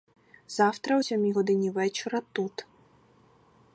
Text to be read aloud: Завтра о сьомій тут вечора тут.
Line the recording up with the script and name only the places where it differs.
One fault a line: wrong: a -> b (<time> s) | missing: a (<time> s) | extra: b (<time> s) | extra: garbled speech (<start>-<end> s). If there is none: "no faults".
wrong: тут -> годині (1.3 s)